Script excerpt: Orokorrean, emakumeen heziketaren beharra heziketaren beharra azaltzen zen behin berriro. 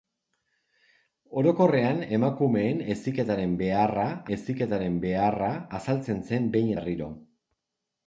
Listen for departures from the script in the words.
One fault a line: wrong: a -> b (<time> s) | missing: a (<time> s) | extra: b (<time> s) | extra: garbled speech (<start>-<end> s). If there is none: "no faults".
no faults